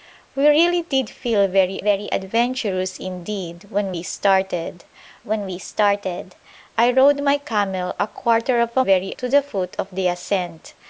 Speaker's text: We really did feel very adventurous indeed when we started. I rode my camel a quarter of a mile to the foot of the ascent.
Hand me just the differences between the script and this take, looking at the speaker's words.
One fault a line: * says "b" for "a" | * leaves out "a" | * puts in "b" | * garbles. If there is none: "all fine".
* puts in "very"
* puts in "when we started"
* says "very" for "mile"